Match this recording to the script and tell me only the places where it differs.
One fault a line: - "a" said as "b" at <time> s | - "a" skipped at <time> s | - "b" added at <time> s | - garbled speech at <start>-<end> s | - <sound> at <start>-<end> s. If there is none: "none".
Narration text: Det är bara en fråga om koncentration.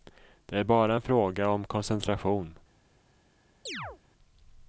- chirp at 3.7-4.0 s